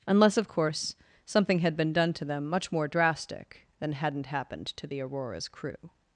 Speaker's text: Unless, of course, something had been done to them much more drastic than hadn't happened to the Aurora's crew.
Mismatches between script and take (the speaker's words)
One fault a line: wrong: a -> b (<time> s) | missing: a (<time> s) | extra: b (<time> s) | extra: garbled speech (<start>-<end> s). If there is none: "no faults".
no faults